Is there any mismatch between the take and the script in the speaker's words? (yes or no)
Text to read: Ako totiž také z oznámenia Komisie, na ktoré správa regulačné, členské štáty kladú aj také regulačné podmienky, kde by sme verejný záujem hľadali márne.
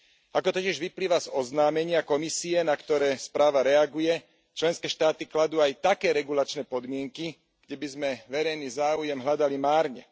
yes